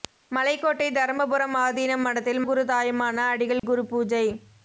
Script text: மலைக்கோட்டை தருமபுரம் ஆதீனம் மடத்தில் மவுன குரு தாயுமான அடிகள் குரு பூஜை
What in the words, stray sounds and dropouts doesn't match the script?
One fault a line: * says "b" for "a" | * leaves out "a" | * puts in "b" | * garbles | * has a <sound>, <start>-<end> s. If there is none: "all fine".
* leaves out "மவுன"
* has a dropout, 3.6-3.6 s